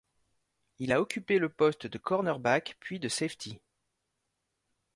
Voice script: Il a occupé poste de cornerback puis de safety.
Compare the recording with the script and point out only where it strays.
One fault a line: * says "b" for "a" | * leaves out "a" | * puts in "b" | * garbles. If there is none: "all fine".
* puts in "le"